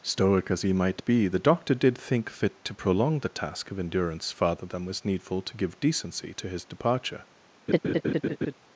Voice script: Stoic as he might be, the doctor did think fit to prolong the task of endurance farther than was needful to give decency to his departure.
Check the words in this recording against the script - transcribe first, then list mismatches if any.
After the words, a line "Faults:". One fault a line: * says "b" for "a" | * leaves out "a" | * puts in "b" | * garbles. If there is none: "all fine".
Stoic as he might be, the doctor did think fit to prolong the task of endurance farther than was needful to give decency to his departure.
Faults:
all fine